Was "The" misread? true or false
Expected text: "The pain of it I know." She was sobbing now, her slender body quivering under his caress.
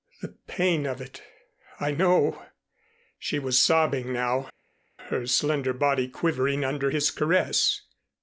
false